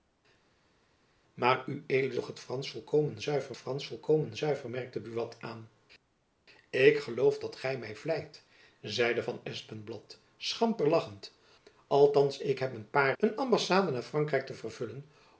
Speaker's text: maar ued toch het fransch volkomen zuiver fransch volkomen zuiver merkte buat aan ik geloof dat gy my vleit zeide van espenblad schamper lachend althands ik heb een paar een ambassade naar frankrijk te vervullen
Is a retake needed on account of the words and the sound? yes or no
no